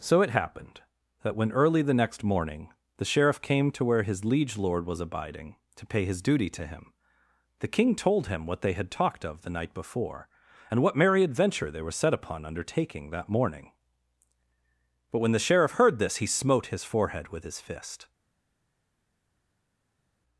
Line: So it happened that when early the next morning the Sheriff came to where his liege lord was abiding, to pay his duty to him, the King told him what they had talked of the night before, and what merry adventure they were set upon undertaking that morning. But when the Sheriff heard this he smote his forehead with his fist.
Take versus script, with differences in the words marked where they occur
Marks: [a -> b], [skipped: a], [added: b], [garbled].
So it happened that when early the next morning the Sheriff came to where his liege lord was abiding, to pay his duty to him, the King told him what they had talked of the night before, and what merry adventure they were set upon undertaking that morning. But when the Sheriff heard this he smote his forehead with his fist.